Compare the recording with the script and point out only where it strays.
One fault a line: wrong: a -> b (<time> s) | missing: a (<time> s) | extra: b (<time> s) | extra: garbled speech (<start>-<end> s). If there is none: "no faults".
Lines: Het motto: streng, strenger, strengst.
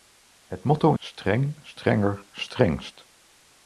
no faults